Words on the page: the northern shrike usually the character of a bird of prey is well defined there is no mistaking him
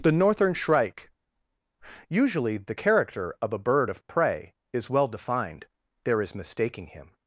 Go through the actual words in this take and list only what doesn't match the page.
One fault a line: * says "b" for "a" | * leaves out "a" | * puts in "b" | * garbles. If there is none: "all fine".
* leaves out "no"